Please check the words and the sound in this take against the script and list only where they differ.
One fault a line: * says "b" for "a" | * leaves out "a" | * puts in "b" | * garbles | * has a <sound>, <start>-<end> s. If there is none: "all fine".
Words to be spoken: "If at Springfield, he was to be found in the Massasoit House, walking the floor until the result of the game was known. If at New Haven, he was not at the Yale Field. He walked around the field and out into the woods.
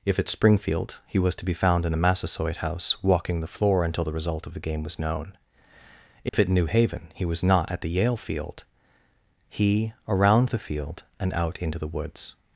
* has a dropout, 6.3-6.3 s
* leaves out "walked"